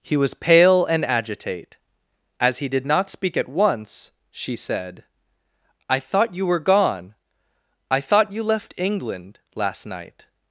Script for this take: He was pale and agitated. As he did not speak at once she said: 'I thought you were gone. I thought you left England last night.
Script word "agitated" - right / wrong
wrong